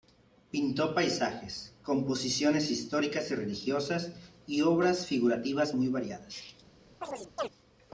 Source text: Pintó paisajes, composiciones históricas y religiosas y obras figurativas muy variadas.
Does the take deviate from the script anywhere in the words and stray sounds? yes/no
yes